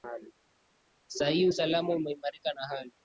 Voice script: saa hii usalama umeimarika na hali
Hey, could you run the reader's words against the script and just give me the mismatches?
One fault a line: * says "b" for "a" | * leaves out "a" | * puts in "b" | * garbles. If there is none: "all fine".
all fine